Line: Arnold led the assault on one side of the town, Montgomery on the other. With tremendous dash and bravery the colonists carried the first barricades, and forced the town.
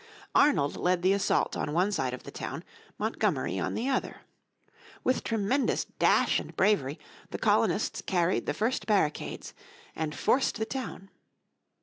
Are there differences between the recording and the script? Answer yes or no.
no